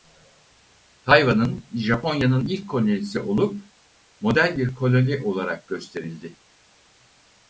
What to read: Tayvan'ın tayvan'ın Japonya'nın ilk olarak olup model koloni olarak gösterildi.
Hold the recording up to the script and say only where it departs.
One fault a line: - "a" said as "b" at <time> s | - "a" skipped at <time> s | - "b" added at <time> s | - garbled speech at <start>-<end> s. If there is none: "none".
- "tayvan'ın" skipped at 1.6 s
- "olarak" said as "kolonisi" at 2.7 s
- "bir" added at 4.6 s